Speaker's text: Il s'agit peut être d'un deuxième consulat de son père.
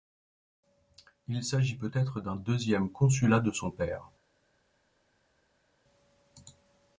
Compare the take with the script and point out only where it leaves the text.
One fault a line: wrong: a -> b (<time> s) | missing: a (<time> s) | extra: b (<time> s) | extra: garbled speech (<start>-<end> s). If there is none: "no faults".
no faults